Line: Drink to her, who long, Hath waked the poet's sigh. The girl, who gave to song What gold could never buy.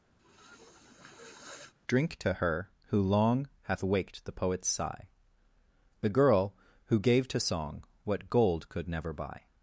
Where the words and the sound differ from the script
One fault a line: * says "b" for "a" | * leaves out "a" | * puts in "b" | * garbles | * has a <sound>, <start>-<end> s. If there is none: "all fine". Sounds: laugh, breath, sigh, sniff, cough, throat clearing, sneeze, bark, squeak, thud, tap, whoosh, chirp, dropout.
* has a sniff, 0.2-1.7 s